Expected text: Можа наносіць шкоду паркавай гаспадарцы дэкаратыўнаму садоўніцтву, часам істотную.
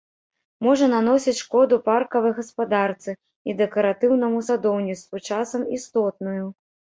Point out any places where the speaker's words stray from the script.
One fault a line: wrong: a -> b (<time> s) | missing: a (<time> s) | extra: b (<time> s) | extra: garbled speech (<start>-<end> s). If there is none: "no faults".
extra: і (3.2 s)